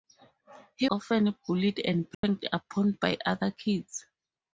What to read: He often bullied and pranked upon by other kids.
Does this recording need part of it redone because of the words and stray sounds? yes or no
yes